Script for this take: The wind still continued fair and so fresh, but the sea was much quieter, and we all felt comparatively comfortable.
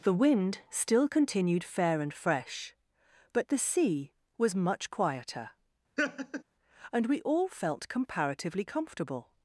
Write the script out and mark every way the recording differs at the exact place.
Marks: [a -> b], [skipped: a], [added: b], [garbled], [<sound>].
The wind still continued fair and [skipped: so] fresh, but the sea was much quieter, [laugh] and we all felt comparatively comfortable.